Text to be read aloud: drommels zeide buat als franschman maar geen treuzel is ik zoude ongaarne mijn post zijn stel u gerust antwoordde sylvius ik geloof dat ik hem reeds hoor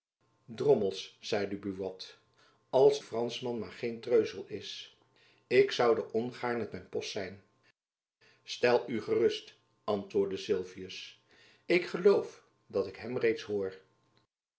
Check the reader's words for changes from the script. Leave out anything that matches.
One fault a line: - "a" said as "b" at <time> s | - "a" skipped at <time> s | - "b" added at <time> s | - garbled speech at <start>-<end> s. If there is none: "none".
none